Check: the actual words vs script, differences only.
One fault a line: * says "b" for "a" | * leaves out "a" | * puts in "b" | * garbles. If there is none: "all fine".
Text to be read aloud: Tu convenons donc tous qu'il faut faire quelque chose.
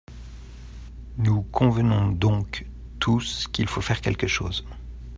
* says "Nous" for "Tu"